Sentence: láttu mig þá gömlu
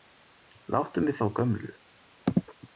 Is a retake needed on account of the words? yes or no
no